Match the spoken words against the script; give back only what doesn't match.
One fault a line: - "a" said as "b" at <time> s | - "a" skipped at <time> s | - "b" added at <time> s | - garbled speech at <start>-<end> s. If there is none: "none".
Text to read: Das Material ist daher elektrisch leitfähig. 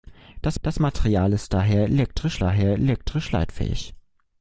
- "das" added at 0.6 s
- "daher elektrisch" added at 2.4 s